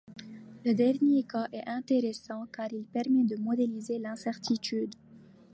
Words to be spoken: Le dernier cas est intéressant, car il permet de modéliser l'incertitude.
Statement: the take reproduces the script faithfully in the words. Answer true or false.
true